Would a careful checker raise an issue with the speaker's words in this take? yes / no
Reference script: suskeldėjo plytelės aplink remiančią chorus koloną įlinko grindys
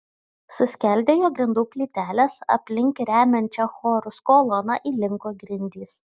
yes